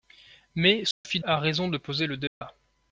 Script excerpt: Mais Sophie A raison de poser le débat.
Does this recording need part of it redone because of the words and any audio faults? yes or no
yes